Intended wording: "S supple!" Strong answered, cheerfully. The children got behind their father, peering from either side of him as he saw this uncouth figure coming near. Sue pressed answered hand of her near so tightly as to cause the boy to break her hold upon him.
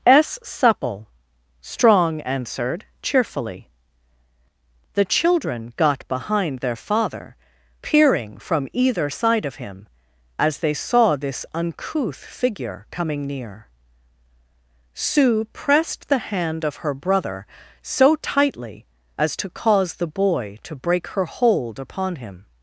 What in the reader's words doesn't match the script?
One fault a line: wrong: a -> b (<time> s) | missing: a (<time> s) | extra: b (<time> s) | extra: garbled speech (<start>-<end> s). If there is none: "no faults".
wrong: he -> they (10.6 s)
wrong: answered -> the (16.1 s)
wrong: near -> brother (16.9 s)